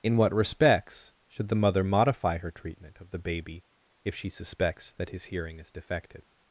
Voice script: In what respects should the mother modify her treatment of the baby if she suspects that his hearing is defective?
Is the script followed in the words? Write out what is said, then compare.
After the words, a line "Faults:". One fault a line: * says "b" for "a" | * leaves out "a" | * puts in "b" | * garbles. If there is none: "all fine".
In what respects should the mother modify her treatment of the baby if she suspects that his hearing is defective?
Faults:
all fine